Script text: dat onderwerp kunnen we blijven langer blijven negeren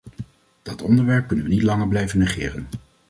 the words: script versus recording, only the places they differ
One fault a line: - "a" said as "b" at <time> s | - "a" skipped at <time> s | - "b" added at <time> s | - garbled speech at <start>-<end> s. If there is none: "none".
- "blijven" said as "niet" at 1.5 s